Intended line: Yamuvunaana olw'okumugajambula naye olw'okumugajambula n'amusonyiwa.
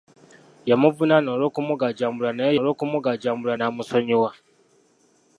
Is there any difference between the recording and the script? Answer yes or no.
no